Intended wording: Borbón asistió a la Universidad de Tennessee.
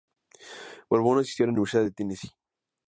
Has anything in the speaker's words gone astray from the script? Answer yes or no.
no